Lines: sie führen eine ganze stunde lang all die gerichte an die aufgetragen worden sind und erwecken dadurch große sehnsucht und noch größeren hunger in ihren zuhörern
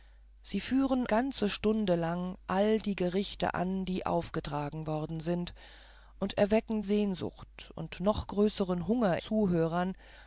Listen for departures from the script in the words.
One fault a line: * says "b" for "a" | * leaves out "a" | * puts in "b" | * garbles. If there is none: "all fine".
* leaves out "eine"
* leaves out "dadurch große"
* leaves out "in ihren"